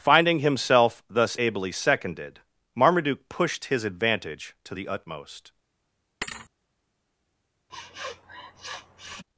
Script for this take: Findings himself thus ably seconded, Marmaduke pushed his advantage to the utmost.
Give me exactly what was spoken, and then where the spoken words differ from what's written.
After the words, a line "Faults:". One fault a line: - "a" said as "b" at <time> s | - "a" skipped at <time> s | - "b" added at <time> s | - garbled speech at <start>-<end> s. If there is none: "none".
Finding himself thus ably seconded, Marmaduke pushed his advantage to the utmost.
Faults:
- "Findings" said as "Finding" at 0.0 s